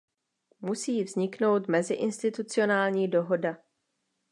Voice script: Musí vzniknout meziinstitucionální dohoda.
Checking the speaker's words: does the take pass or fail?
pass